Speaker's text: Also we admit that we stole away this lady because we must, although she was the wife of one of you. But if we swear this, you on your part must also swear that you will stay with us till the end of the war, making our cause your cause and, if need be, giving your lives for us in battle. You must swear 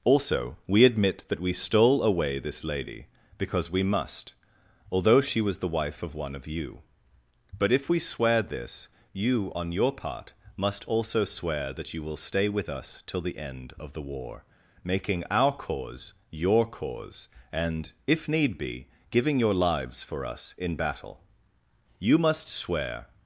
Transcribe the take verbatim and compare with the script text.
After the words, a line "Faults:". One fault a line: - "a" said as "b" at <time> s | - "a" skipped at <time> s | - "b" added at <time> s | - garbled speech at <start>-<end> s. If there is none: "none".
Also we admit that we stole away this lady because we must, although she was the wife of one of you. But if we swear this, you on your part must also swear that you will stay with us till the end of the war, making our cause your cause and, if need be, giving your lives for us in battle. You must swear
Faults:
none